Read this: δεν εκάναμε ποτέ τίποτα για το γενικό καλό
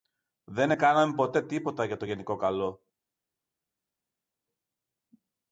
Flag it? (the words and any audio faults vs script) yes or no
no